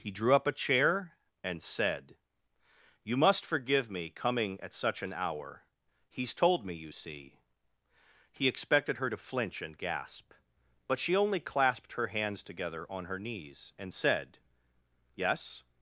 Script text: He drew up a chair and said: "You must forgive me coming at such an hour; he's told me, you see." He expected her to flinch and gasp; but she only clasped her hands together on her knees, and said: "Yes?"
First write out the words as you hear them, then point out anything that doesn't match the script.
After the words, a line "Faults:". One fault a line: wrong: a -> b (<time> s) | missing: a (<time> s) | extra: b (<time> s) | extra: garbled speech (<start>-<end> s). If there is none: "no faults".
He drew up a chair and said: "You must forgive me coming at such an hour; he's told me, you see." He expected her to flinch and gasp; but she only clasped her hands together on her knees, and said: "Yes?"
Faults:
no faults